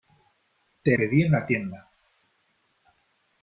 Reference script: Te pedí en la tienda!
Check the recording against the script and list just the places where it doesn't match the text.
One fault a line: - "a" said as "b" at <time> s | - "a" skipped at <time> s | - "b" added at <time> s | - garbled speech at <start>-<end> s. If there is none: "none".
none